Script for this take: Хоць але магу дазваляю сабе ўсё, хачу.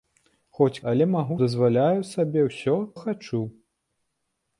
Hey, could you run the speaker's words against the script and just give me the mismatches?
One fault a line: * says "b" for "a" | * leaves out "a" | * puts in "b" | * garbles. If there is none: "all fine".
all fine